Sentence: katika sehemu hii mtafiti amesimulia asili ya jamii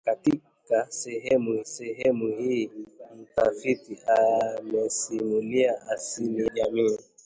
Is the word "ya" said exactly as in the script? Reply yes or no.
no